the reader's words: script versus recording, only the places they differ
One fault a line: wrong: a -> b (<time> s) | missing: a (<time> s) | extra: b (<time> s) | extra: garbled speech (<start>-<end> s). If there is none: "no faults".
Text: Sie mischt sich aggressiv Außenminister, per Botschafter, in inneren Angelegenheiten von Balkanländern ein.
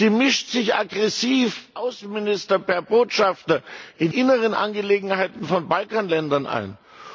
no faults